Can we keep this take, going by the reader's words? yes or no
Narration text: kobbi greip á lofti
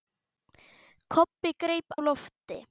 yes